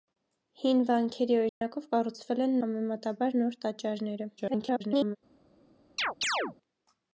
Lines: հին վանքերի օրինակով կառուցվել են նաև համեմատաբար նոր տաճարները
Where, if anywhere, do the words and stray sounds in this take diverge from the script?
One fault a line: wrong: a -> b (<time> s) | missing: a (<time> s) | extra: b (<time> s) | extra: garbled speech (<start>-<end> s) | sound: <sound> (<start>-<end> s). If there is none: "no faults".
sound: dropout (1.5-1.6 s)
missing: նաև (2.6 s)
extra: garbled speech (4.4-5.2 s)
sound: chirp (6.0-6.6 s)